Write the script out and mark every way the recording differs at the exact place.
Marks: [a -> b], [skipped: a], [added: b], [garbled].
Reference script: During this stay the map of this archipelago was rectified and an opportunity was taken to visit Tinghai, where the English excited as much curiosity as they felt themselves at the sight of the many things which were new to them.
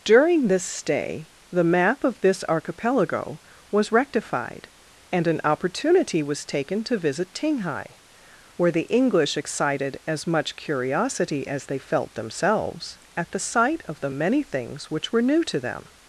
During this stay the map of this archipelago was rectified and an opportunity was taken to visit Tinghai, where the English excited as much curiosity as they felt themselves at the sight of the many things which were new to them.